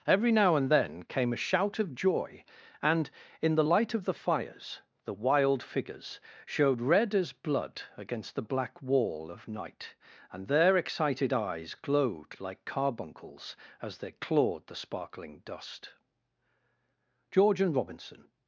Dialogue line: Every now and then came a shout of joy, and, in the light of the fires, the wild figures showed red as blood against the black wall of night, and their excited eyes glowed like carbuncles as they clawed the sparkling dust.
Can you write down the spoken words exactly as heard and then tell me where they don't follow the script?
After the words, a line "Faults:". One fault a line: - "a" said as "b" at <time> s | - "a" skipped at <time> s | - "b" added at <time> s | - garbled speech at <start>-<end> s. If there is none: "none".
Every now and then came a shout of joy, and, in the light of the fires, the wild figures showed red as blood against the black wall of night, and their excited eyes glowed like carbuncles as they clawed the sparkling dust. George and Robinson
Faults:
- "George and Robinson" added at 17.3 s